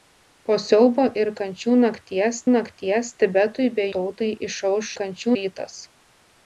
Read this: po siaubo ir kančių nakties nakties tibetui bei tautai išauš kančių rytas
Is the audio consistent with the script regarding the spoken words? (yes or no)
yes